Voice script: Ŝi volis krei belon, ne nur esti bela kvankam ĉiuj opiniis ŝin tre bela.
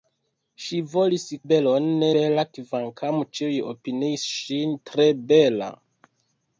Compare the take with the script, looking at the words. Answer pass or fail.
fail